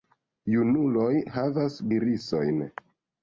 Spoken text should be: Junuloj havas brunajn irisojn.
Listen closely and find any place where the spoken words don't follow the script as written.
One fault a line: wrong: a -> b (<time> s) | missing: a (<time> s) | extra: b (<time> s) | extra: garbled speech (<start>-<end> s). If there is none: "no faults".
missing: brunajn (1.8 s)